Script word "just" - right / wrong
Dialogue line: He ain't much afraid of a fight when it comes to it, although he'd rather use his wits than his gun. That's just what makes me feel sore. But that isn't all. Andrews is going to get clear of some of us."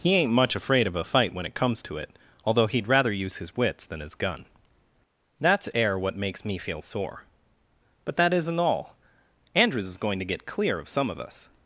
wrong